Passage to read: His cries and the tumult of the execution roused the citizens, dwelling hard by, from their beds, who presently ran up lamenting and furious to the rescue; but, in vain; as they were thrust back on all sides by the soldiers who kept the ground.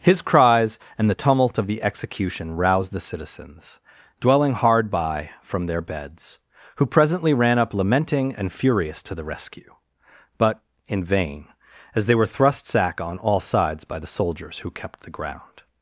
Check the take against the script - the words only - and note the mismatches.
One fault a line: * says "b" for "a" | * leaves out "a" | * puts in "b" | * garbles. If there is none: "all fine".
* says "sack" for "back"